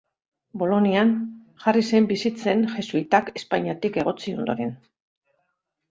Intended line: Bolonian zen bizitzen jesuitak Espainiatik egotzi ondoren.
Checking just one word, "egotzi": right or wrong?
right